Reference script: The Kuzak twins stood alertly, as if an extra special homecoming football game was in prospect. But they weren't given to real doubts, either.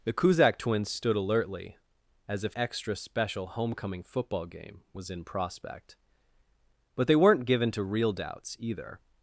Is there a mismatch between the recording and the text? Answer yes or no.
yes